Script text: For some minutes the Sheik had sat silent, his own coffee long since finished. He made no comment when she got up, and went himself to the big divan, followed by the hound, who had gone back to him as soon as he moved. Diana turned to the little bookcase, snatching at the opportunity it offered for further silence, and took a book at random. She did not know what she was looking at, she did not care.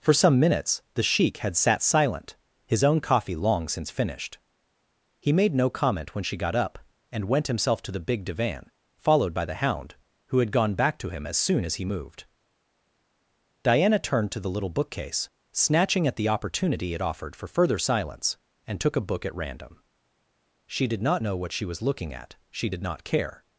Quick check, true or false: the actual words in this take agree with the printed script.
true